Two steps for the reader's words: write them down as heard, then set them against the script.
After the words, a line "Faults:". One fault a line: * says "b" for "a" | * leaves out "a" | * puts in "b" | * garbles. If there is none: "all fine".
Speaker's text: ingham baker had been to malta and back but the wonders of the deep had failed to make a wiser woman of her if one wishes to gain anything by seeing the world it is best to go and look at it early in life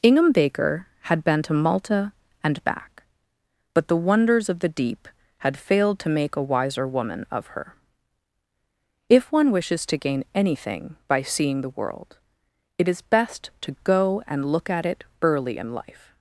ingham baker had been to malta and back but the wonders of the deep had failed to make a wiser woman of her if one wishes to gain anything by seeing the world it is best to go and look at it early in life
Faults:
all fine